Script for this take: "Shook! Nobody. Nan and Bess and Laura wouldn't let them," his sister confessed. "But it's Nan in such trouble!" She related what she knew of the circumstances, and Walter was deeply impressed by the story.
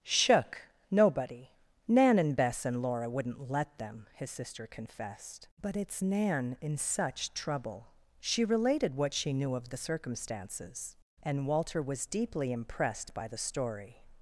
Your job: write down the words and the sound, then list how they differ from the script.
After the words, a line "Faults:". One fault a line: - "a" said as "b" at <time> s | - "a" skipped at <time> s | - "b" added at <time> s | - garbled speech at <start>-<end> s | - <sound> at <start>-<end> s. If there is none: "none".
"Shook! Nobody. Nan and Bess and Laura wouldn't let them," his sister confessed. "But it's Nan in such trouble!" She related what she knew of the circumstances, and Walter was deeply impressed by the story.
Faults:
none